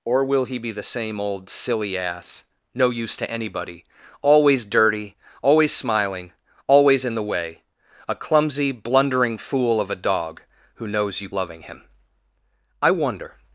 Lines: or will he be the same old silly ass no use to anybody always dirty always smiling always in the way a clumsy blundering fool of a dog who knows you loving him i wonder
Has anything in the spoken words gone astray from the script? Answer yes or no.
no